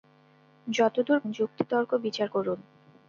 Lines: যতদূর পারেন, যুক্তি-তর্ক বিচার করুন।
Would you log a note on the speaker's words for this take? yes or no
yes